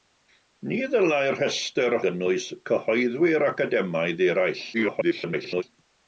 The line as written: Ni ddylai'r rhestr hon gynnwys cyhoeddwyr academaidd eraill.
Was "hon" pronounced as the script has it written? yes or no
no